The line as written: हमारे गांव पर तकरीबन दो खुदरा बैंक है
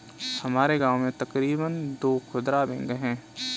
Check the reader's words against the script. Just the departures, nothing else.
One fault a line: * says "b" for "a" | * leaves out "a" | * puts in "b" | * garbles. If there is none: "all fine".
* says "में" for "पर"